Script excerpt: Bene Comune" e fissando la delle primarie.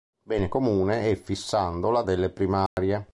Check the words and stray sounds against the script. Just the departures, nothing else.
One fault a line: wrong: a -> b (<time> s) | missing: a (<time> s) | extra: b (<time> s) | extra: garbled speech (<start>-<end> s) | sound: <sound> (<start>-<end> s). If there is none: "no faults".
sound: dropout (2.7-2.8 s)